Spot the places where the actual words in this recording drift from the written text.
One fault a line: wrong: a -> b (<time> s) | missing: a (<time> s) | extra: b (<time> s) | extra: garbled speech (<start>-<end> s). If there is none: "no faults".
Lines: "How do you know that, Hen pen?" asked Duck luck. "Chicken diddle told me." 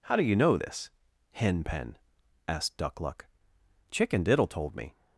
wrong: that -> this (0.5 s)